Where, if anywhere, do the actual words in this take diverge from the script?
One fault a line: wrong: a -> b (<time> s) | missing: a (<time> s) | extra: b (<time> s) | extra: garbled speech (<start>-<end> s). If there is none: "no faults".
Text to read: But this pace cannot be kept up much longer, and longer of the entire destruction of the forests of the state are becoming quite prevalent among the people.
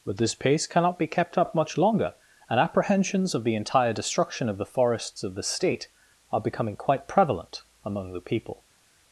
wrong: longer -> apprehensions (2.6 s)